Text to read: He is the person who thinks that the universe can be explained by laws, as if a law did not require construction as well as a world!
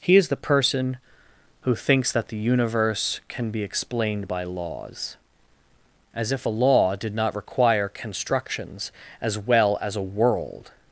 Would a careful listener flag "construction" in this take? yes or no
yes